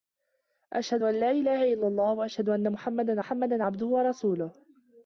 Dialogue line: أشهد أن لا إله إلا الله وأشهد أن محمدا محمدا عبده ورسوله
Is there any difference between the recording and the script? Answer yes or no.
no